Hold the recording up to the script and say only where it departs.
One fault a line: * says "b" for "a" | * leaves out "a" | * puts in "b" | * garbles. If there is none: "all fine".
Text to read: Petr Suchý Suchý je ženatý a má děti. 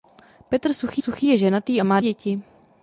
all fine